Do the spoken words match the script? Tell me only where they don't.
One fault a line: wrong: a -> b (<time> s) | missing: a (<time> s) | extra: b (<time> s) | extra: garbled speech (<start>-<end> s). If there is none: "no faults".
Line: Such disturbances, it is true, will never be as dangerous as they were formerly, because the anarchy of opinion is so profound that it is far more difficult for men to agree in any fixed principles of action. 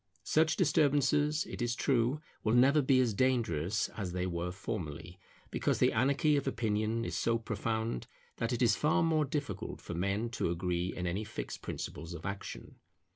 no faults